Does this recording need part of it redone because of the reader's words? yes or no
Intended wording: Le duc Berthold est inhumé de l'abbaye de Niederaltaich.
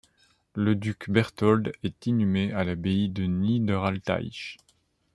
yes